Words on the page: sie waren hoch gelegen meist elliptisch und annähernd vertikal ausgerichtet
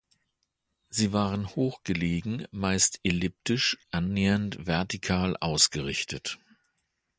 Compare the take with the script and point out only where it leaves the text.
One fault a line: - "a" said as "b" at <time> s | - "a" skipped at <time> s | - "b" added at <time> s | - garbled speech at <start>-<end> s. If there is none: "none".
- "und" skipped at 3.8 s